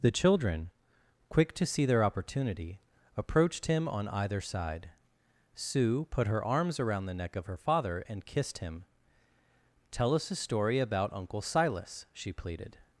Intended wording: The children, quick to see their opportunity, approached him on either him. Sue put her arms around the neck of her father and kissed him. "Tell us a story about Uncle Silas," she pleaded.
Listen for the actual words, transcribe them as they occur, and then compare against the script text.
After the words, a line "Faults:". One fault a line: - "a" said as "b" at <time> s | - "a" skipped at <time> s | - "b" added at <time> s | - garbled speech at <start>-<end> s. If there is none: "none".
The children, quick to see their opportunity, approached him on either side. Sue put her arms around the neck of her father and kissed him. "Tell us a story about Uncle Silas," she pleaded.
Faults:
- "him" said as "side" at 4.4 s